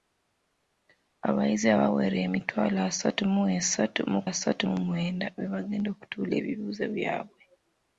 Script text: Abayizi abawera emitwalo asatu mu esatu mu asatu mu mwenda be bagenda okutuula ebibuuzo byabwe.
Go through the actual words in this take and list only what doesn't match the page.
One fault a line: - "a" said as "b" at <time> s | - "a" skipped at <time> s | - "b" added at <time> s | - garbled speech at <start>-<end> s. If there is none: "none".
none